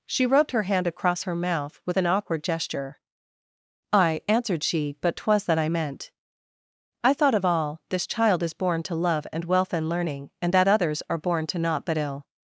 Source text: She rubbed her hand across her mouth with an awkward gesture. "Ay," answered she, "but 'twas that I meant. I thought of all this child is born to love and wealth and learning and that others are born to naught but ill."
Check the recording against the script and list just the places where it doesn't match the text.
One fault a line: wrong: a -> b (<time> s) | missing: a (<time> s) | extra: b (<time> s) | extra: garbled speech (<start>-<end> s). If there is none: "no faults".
no faults